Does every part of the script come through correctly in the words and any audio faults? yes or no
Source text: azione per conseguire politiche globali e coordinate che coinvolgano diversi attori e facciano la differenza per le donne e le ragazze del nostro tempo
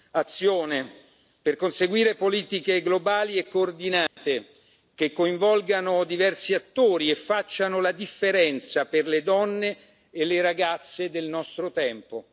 no